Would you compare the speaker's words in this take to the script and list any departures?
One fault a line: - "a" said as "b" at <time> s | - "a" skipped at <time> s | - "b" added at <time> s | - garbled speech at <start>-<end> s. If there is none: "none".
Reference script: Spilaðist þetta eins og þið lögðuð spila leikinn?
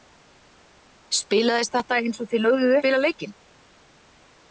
none